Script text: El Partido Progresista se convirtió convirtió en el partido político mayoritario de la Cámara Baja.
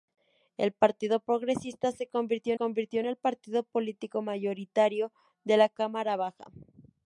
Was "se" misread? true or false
false